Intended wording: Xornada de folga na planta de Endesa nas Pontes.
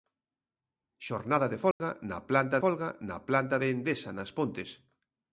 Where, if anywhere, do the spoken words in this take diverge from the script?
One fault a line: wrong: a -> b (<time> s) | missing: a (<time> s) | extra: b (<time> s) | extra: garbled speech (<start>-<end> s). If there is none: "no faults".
extra: folga na planta (2.6 s)